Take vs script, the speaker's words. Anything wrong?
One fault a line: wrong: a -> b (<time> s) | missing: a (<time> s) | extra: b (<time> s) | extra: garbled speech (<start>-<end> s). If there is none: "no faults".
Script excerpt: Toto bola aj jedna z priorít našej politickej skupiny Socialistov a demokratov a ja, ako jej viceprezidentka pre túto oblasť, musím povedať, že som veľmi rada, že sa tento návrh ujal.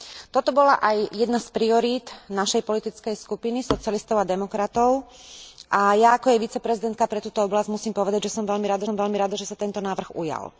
extra: som veľmi rada (8.8 s)